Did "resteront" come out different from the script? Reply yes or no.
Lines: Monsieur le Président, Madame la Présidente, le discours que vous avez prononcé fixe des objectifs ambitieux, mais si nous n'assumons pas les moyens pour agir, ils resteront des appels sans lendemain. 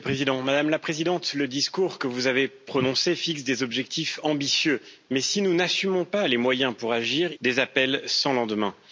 yes